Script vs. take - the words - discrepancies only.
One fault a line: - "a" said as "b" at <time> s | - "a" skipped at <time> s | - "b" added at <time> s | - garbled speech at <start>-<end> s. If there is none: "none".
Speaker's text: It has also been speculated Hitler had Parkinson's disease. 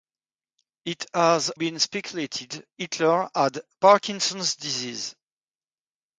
- "also" skipped at 1.5 s